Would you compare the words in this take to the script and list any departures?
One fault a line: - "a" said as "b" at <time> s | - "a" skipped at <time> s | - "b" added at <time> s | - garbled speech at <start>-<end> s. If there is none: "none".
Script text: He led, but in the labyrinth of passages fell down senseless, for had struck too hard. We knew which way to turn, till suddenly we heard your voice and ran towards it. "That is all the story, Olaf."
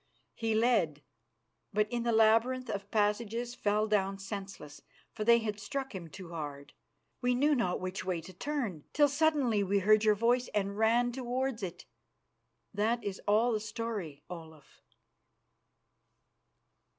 - "they" added at 5.2 s
- "him" added at 5.9 s
- "not" added at 7.5 s